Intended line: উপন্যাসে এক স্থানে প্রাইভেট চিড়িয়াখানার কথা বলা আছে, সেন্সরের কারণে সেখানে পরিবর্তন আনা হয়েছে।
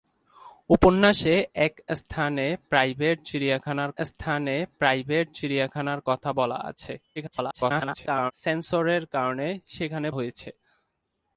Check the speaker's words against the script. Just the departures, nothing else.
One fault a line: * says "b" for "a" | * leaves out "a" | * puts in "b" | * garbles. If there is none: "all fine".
* puts in "স্থানে প্রাইভেট চিড়িয়াখানার"
* garbles
* leaves out "পরিবর্তন আনা"